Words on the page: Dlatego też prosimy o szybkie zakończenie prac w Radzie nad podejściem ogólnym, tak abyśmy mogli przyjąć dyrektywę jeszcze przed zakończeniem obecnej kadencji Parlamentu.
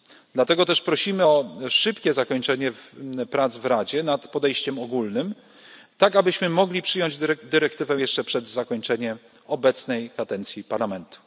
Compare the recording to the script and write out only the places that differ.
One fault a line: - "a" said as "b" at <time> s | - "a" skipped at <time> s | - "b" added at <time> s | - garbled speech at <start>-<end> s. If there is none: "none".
none